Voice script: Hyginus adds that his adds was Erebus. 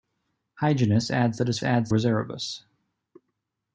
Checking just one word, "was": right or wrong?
right